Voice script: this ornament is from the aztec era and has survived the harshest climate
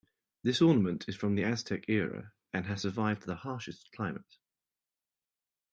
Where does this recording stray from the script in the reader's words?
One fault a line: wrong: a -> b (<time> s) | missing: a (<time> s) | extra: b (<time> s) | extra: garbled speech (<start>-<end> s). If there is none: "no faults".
no faults